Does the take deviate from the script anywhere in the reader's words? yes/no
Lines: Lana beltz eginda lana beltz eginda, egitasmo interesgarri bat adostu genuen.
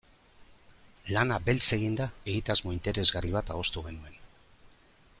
yes